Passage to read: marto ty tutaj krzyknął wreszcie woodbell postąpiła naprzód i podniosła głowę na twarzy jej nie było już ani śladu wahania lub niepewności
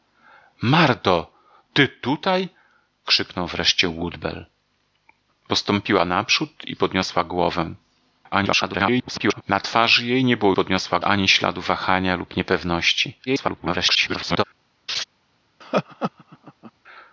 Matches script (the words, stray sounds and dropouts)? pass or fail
fail